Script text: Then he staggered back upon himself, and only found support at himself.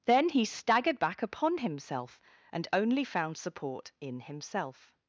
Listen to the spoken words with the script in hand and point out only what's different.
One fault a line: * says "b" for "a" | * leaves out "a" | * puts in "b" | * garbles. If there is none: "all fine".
* says "in" for "at"